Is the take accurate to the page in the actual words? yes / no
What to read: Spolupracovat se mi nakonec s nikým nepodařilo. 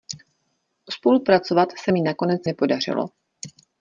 no